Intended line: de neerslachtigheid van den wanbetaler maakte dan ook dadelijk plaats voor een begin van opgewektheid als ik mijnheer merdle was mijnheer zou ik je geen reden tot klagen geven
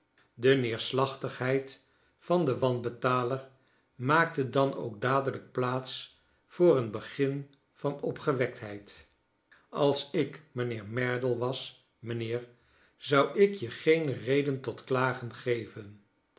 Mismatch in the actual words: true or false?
false